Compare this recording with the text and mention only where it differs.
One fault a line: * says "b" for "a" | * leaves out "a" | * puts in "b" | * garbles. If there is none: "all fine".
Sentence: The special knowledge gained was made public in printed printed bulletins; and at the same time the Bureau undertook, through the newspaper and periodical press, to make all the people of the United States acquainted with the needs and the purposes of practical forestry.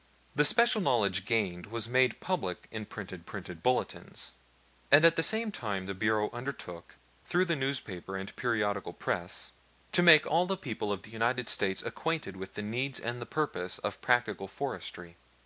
all fine